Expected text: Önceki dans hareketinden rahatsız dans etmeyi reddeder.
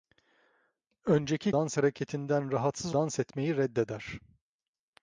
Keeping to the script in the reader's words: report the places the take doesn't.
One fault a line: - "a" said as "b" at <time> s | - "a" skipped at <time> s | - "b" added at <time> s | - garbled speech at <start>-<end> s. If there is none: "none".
none